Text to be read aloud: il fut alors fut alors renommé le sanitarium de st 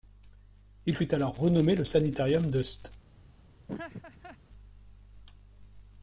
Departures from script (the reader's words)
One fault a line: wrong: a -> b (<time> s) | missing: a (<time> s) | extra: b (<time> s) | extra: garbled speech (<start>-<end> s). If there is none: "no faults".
missing: fut alors (1.3 s)